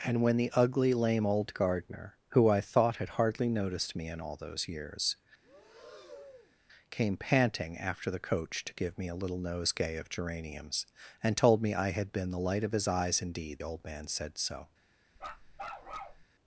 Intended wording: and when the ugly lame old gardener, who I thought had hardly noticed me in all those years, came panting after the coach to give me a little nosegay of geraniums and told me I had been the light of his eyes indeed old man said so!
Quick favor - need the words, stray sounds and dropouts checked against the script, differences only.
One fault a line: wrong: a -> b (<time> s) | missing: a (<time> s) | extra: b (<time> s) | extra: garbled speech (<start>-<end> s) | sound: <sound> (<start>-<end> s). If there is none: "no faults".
sound: breath (5.4-6.6 s)
sound: bark (15.2-16.2 s)